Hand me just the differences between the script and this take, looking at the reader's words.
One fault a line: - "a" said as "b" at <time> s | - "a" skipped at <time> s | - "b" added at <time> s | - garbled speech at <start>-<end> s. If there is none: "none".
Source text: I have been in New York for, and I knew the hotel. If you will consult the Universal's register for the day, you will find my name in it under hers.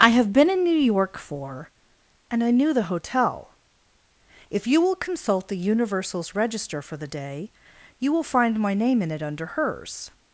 none